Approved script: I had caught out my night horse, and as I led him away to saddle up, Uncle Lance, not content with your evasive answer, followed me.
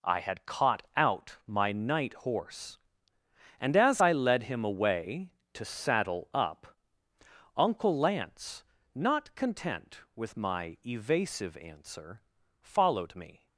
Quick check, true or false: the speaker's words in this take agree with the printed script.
false